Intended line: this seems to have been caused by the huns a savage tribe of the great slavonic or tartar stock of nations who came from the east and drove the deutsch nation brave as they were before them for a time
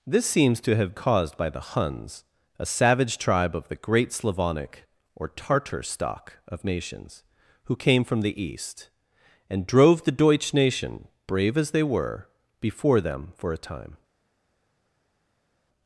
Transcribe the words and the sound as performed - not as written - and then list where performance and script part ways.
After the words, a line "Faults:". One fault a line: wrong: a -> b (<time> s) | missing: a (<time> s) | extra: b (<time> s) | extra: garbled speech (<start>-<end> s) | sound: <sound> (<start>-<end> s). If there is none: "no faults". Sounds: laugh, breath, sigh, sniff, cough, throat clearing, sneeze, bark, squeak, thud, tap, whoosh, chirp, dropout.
this seems to have caused by the huns a savage tribe of the great slavonic or tartar stock of nations who came from the east and drove the deutsch nation brave as they were before them for a time
Faults:
missing: been (0.9 s)